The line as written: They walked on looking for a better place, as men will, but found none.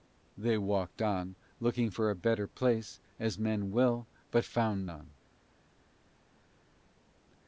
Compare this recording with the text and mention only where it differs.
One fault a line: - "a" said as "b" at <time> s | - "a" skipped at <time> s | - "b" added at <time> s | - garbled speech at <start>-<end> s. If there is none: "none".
none